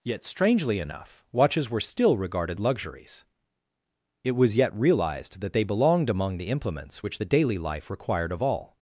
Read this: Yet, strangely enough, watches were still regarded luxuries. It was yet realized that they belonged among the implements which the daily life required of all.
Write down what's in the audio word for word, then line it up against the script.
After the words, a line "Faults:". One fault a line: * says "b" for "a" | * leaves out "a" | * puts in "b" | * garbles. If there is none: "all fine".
Yet, strangely enough, watches were still regarded luxuries. It was yet realized that they belonged among the implements which the daily life required of all.
Faults:
all fine